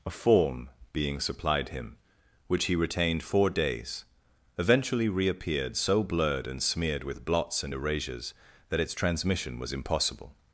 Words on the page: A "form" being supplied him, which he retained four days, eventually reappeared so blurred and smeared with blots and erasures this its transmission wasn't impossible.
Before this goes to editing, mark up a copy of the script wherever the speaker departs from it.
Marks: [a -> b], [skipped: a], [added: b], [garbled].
A "form" being supplied him, which he retained four days, eventually reappeared so blurred and smeared with blots and erasures [this -> that] its transmission [wasn't -> was] impossible.